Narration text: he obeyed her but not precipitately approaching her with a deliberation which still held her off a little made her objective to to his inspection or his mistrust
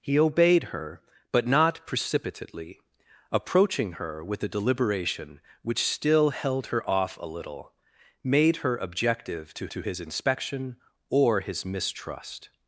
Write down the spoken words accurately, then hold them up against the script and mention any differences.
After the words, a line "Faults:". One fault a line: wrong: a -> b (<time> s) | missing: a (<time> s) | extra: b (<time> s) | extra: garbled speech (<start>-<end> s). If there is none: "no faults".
he obeyed her but not precipitately approaching her with a deliberation which still held her off a little made her objective to to his inspection or his mistrust
Faults:
no faults